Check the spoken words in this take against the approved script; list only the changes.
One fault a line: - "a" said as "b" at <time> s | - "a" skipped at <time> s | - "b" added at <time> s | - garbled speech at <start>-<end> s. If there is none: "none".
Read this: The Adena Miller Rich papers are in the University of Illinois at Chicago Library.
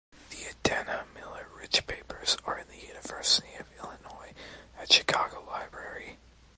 none